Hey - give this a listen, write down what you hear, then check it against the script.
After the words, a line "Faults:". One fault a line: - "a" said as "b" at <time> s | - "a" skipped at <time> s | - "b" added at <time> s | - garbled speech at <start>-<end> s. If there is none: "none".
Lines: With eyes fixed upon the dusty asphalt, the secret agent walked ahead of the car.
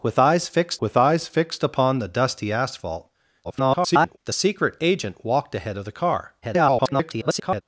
With eyes fixed with eyes fixed upon the dusty asphalt, [garbled] the secret agent walked ahead of the car. [garbled]
Faults:
- "with eyes fixed" added at 0.8 s
- garbled speech at 3.4-4.2 s
- garbled speech at 6.4-7.6 s